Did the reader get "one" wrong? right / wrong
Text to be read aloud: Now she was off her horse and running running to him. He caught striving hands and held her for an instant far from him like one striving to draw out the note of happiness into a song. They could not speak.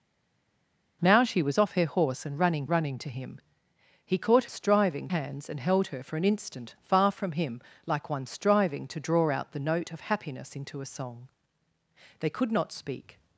right